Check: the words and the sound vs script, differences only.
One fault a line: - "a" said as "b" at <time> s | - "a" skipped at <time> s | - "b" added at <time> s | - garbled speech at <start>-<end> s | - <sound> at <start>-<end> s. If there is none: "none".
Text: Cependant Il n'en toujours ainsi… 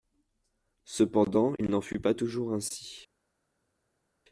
- "fut pas" added at 1.8 s